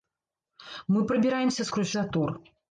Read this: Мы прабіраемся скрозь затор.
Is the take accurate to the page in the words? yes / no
yes